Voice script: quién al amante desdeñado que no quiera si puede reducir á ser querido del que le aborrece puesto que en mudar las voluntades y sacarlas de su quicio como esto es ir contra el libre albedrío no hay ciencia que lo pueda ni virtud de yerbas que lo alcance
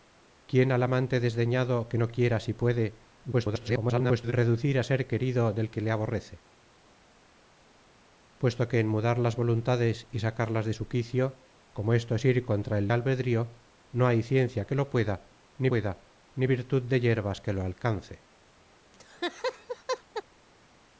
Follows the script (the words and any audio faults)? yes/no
no